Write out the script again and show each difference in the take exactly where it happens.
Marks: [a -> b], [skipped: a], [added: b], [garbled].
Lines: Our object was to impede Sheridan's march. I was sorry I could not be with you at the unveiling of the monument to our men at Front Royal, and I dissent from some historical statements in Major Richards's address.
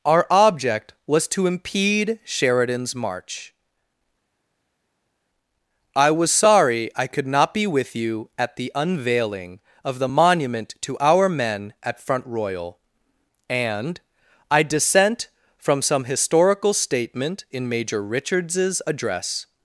Our object was to impede Sheridan's march. I was sorry I could not be with you at the unveiling of the monument to our men at Front Royal, and I dissent from some historical [statements -> statement] in Major Richards's address.